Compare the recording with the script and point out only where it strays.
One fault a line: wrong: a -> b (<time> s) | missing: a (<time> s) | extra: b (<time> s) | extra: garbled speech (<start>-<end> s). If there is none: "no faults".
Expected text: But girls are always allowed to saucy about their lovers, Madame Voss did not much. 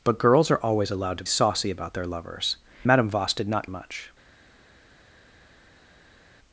no faults